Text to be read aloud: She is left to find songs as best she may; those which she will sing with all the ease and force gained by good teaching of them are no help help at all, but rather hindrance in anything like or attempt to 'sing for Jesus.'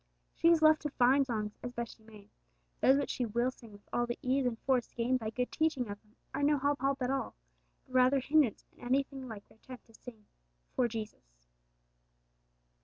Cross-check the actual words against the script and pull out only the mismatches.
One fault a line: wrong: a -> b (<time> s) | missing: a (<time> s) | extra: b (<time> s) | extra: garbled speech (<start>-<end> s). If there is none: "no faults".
no faults